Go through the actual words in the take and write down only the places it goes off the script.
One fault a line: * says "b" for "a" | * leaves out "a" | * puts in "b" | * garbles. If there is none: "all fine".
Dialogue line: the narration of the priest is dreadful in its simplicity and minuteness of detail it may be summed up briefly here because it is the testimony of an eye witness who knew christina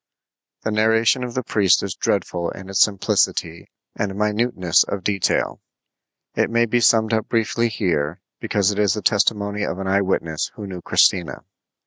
all fine